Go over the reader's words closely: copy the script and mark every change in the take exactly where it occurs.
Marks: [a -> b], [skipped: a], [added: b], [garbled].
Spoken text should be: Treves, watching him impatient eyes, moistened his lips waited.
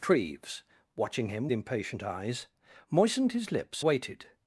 Treves, watching him impatient eyes, moistened his lips waited.